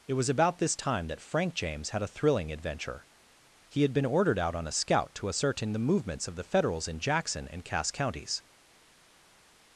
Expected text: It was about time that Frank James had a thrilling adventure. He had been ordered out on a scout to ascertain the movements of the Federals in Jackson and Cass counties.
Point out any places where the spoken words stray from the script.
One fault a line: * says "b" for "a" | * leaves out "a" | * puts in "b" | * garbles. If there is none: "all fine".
* puts in "this"